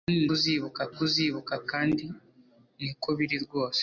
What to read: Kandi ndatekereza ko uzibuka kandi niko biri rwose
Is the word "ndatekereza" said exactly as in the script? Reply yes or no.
no